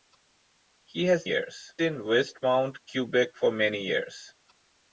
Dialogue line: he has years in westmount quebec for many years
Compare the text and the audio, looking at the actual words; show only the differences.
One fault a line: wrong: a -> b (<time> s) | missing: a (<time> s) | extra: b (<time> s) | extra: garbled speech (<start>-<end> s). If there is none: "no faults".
no faults